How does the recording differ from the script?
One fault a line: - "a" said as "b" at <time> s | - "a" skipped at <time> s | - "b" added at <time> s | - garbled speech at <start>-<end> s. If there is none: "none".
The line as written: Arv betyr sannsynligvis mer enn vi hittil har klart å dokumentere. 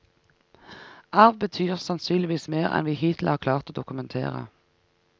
none